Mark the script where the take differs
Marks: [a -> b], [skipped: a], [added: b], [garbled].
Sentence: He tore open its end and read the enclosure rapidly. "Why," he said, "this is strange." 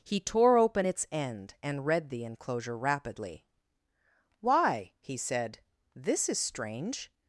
He tore open its end and read the enclosure rapidly. "Why," he said, "this is strange."